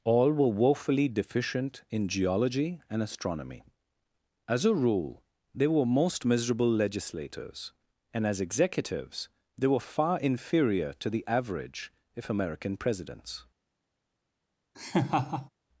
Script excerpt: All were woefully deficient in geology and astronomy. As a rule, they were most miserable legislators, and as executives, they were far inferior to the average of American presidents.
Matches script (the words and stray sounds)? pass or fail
fail